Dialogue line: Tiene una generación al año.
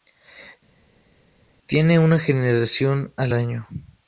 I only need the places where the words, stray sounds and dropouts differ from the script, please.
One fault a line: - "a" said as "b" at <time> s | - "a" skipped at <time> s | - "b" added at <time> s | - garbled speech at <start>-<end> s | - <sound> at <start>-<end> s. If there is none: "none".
none